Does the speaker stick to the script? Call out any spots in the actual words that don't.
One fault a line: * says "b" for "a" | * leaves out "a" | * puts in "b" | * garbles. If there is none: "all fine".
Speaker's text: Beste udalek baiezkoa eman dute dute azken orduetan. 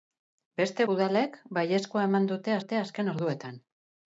all fine